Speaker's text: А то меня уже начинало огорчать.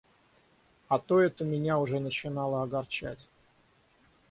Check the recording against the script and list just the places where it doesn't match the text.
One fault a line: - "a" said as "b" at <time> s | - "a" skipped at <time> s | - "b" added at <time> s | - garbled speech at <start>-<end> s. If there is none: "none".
- "это" added at 1.2 s